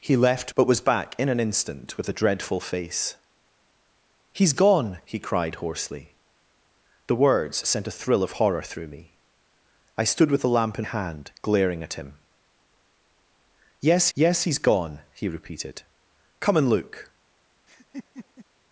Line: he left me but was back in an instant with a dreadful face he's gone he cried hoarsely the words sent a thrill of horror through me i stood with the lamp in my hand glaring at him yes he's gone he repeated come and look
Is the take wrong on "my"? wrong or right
wrong